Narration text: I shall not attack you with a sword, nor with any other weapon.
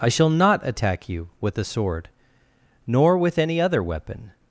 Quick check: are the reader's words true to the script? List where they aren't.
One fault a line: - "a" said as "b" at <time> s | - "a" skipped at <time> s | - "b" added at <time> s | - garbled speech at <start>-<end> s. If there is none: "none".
none